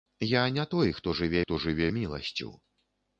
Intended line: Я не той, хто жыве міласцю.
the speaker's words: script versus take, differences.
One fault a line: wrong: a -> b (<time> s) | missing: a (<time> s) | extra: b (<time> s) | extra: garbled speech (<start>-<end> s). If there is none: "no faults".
extra: хто жыве (1.4 s)